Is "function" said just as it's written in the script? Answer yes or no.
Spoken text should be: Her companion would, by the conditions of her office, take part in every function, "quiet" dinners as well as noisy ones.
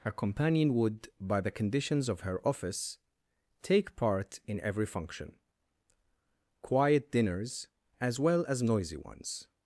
yes